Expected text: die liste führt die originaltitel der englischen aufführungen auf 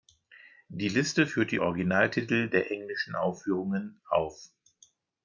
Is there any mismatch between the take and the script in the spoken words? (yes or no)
no